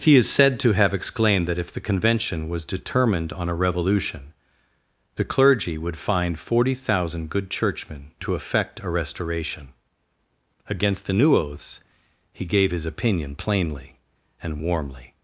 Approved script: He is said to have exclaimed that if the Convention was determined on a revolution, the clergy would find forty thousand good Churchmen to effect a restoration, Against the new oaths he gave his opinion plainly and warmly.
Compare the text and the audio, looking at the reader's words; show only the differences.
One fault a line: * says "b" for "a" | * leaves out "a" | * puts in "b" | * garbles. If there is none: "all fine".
all fine